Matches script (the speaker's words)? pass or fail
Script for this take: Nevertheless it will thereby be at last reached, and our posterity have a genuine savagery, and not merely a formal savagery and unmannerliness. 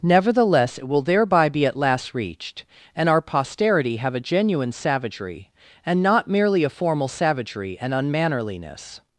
pass